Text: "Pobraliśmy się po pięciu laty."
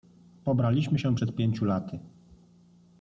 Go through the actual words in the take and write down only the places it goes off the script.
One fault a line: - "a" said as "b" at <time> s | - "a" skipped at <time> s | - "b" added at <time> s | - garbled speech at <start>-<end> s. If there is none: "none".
- "po" said as "przed" at 1.1 s